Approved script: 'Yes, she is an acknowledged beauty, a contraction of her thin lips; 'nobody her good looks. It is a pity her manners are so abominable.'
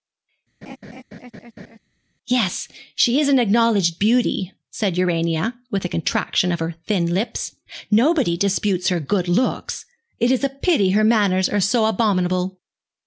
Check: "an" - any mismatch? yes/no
no